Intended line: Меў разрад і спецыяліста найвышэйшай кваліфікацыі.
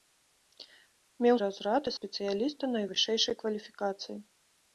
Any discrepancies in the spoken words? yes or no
no